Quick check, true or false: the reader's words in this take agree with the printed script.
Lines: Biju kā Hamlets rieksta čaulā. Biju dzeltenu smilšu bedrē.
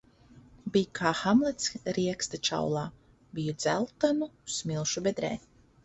true